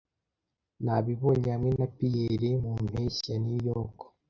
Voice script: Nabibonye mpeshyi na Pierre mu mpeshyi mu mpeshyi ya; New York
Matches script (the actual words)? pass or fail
fail